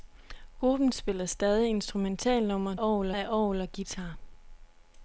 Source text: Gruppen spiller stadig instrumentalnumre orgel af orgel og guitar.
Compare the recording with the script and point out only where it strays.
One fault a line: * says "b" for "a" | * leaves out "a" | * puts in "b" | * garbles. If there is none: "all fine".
all fine